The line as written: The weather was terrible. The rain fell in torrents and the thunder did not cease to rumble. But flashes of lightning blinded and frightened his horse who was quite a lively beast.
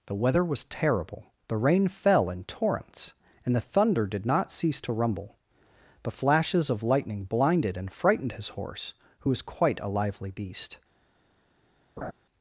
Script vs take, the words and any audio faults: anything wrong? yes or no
yes